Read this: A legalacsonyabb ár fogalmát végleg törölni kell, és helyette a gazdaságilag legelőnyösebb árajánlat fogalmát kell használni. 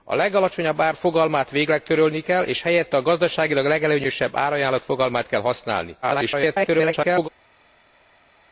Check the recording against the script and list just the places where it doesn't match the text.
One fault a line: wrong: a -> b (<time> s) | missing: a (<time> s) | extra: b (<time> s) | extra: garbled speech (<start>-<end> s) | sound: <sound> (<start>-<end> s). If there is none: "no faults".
extra: garbled speech (6.0-7.3 s)